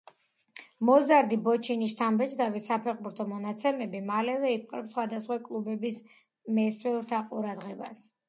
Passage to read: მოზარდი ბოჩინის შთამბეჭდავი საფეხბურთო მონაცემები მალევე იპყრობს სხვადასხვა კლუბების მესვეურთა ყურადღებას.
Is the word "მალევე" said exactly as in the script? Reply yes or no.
yes